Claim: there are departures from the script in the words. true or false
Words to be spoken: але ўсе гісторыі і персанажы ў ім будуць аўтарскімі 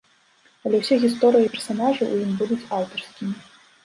false